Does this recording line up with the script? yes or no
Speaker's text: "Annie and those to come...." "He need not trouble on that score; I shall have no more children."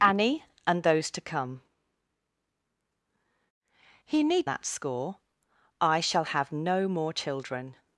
no